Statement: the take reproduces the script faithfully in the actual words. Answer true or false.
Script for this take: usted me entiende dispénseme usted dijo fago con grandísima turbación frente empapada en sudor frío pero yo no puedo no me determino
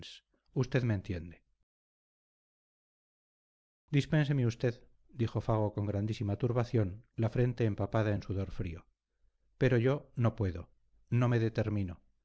false